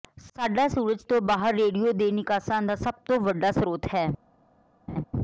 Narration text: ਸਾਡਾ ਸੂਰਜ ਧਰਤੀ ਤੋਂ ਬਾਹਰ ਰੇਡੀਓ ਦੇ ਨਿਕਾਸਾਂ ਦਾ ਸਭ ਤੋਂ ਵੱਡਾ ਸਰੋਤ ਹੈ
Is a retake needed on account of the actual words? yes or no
yes